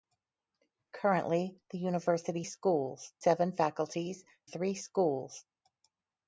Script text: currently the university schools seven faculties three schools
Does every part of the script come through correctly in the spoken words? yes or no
yes